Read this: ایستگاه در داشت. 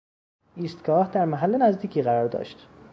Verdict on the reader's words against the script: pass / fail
fail